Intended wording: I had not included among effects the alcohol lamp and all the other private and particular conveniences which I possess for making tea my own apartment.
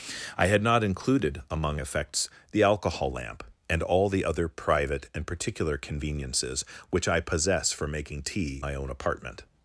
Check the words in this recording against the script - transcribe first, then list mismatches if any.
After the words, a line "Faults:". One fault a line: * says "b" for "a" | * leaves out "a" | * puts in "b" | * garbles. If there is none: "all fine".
I had not included among effects the alcohol lamp and all the other private and particular conveniences which I possess for making tea my own apartment.
Faults:
all fine